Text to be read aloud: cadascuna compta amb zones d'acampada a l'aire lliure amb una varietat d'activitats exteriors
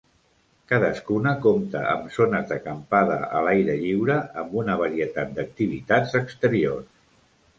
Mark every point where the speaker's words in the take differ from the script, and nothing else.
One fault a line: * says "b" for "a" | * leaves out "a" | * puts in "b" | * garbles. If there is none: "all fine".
all fine